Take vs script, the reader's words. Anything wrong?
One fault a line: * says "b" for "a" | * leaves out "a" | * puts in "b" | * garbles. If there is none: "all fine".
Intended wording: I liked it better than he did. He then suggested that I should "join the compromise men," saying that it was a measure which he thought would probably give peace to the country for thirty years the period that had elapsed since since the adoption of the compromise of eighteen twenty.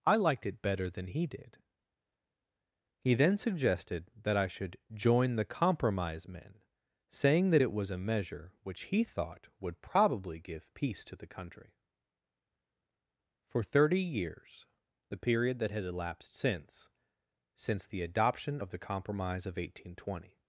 all fine